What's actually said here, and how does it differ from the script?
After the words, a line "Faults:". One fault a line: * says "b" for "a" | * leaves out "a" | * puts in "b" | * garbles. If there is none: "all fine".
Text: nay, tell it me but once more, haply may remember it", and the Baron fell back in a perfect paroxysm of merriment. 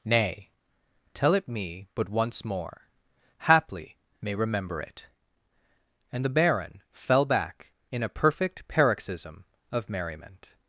nay, tell it me but once more, haply may remember it", and the Baron fell back in a perfect paroxysm of merriment.
Faults:
all fine